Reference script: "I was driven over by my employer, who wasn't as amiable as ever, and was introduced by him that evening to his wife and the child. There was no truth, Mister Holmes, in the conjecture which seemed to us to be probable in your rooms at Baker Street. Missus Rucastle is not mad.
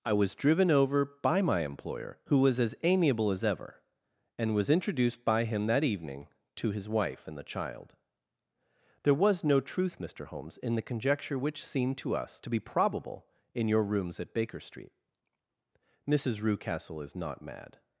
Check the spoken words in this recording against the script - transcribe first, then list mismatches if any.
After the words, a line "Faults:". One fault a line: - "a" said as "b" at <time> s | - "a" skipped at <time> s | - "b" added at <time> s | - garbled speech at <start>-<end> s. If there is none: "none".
"I was driven over by my employer, who was as amiable as ever, and was introduced by him that evening to his wife and the child. There was no truth, Mister Holmes, in the conjecture which seemed to us to be probable in your rooms at Baker Street. Missus Rucastle is not mad.
Faults:
- "wasn't" said as "was" at 2.4 s